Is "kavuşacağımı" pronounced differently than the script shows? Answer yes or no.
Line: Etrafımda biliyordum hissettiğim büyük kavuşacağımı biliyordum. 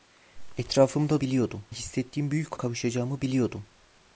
no